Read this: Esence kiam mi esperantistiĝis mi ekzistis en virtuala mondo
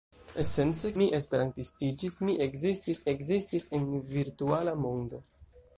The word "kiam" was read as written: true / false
false